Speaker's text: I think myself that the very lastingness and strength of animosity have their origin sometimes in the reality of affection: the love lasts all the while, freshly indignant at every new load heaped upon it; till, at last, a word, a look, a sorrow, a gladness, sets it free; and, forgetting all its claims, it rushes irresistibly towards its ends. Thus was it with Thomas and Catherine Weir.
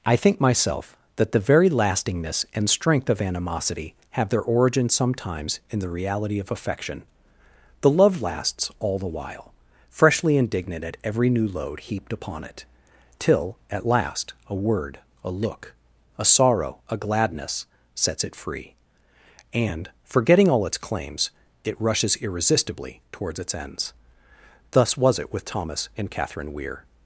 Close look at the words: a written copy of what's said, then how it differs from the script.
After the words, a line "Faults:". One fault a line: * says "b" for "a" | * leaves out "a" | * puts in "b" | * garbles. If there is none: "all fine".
I think myself that the very lastingness and strength of animosity have their origin sometimes in the reality of affection: the love lasts all the while, freshly indignant at every new load heaped upon it; till, at last, a word, a look, a sorrow, a gladness, sets it free; and, forgetting all its claims, it rushes irresistibly towards its ends. Thus was it with Thomas and Catherine Weir.
Faults:
all fine